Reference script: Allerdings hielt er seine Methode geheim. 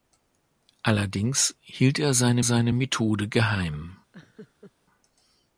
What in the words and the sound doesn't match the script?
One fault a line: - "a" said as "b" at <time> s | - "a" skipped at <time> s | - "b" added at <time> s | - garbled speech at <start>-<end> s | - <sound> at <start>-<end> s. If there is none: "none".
- "seine" added at 2.4 s
- laugh at 4.1-4.7 s